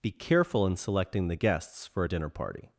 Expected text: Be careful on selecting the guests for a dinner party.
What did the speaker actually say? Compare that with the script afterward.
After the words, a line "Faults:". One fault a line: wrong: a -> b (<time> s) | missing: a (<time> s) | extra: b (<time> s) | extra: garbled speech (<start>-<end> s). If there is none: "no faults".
Be careful in selecting the guests for a dinner party.
Faults:
wrong: on -> in (0.7 s)